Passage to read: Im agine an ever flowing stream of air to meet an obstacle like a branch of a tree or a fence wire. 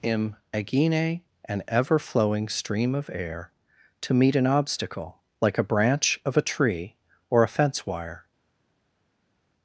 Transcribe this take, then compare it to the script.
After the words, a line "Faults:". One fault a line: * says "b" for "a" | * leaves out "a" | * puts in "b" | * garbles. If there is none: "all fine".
Im agine an ever flowing stream of air to meet an obstacle like a branch of a tree or a fence wire.
Faults:
all fine